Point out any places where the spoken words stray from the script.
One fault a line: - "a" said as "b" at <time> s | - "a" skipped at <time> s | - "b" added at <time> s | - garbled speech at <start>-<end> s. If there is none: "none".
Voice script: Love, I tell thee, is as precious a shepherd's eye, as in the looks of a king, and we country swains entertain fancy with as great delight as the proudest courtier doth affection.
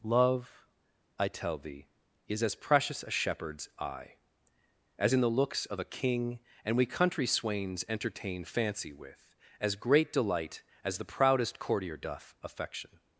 none